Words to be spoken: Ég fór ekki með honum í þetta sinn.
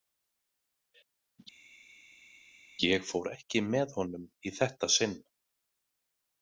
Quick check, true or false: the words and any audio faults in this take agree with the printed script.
true